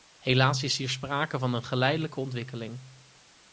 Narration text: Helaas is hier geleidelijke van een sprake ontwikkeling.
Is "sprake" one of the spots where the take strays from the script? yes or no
yes